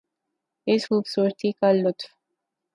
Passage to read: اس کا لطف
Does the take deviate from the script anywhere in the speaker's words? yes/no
yes